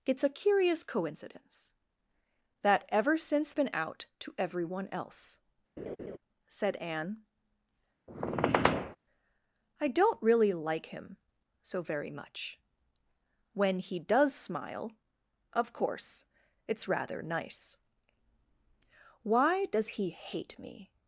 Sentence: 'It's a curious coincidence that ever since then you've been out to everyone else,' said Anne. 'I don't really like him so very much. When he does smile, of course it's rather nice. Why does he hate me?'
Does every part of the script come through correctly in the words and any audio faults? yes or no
no